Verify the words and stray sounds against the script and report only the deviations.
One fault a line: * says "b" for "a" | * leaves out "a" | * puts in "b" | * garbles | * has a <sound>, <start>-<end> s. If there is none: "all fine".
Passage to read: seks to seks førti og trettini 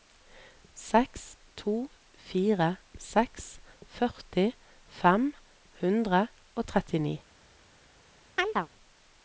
* puts in "fire"
* puts in "fem hundre"
* has a chirp, 8.4-8.7 s